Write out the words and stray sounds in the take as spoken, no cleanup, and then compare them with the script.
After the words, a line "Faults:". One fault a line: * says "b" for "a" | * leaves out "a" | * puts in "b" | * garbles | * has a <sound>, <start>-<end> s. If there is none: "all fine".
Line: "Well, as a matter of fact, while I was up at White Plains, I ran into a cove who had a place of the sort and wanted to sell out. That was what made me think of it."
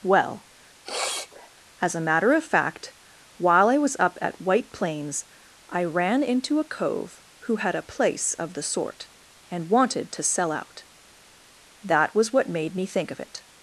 "Well, as a matter of fact, while I was up at White Plains, I ran into a cove who had a place of the sort and wanted to sell out. That was what made me think of it."
Faults:
* has a sniff, 0.8-1.5 s